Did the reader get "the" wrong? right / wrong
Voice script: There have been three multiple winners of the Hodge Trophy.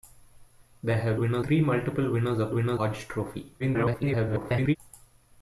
wrong